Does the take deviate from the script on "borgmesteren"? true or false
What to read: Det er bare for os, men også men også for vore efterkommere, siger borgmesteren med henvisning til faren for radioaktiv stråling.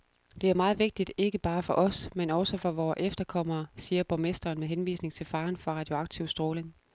false